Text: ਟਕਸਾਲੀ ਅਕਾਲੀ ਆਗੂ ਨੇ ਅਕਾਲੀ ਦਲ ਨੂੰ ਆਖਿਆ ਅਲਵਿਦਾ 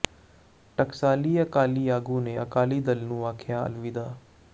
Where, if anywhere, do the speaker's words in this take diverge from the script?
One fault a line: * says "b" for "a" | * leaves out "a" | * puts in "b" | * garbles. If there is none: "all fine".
all fine